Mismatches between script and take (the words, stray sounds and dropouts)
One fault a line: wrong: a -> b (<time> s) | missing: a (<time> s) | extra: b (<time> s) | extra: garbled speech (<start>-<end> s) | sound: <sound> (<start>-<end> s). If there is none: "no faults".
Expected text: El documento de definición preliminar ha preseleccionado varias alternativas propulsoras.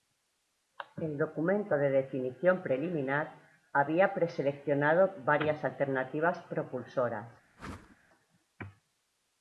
wrong: ha -> había (3.7 s)
sound: whoosh (7.6-8.0 s)